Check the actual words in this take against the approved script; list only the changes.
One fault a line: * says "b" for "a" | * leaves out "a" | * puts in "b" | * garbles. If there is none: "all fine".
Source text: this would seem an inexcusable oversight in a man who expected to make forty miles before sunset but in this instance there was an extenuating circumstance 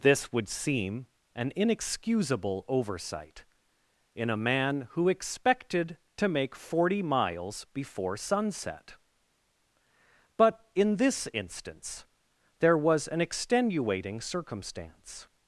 all fine